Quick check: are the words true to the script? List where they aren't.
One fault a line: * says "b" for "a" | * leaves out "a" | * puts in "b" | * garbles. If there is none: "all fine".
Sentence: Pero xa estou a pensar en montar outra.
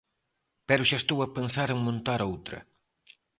all fine